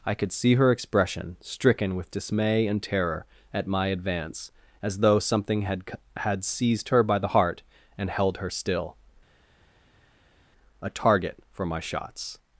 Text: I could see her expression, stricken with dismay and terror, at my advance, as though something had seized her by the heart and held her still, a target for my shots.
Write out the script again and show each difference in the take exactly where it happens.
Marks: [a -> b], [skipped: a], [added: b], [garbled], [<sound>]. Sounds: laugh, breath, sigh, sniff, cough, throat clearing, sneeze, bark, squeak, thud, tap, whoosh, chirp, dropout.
I could see her expression, stricken with dismay and terror, at my advance, as though something had [added: had] seized her by the heart and held her still, a target for my shots.